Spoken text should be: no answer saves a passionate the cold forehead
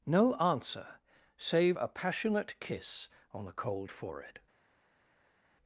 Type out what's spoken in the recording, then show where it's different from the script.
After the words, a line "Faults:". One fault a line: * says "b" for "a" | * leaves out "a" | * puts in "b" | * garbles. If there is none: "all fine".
no answer save a passionate kiss on the cold forehead
Faults:
* says "save" for "saves"
* puts in "kiss on"